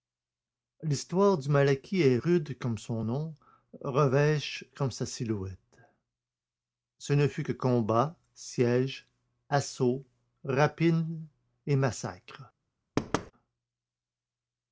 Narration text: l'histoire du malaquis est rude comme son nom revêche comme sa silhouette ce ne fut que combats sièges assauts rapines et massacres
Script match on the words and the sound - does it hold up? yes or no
no